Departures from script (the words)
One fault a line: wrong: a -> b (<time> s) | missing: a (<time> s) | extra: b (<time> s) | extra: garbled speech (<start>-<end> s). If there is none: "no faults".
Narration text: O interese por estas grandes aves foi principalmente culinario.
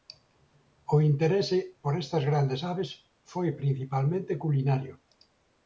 no faults